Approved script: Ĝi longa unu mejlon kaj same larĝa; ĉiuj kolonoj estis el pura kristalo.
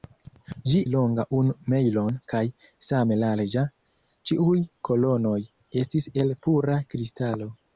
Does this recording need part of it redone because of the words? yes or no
no